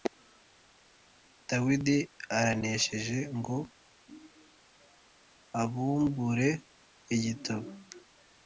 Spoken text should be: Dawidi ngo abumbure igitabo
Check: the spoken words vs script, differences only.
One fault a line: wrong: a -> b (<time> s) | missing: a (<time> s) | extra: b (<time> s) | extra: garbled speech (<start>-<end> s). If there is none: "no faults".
extra: aranesheje (2.4 s)